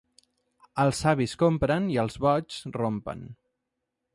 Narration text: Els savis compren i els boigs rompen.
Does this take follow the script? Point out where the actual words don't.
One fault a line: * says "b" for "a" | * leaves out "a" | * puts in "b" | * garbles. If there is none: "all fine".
all fine